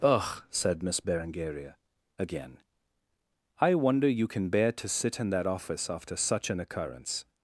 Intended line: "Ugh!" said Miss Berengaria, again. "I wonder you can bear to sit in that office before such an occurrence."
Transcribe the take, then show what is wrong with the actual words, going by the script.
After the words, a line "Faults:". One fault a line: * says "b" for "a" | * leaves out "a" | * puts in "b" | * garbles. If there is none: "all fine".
"Ugh!" said Miss Berengaria, again. "I wonder you can bear to sit in that office after such an occurrence."
Faults:
* says "after" for "before"